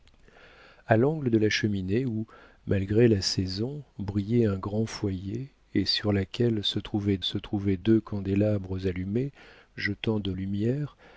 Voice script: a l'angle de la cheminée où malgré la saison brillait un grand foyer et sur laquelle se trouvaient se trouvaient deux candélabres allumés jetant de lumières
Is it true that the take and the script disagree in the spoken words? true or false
false